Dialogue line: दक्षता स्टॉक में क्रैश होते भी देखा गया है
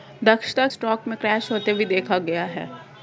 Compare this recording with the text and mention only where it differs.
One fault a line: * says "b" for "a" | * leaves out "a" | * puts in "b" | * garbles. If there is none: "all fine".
all fine